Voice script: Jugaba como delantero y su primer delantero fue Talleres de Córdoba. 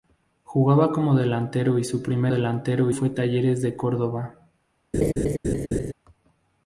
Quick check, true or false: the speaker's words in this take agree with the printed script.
true